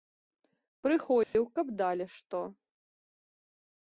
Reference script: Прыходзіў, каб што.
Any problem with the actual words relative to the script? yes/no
yes